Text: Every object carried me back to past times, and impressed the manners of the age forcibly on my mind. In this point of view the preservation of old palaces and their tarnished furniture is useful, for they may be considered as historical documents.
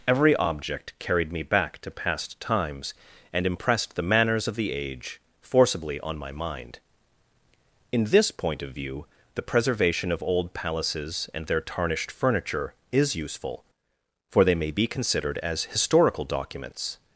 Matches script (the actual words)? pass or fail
pass